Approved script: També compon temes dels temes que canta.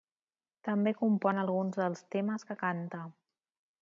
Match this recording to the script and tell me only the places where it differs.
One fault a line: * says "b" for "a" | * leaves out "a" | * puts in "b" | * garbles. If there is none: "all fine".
* says "alguns" for "temes"